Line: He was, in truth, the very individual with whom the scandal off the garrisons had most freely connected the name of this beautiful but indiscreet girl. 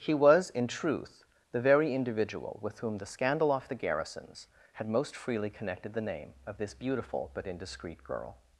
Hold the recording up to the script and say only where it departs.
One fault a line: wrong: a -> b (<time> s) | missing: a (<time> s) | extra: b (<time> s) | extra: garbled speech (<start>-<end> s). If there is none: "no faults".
no faults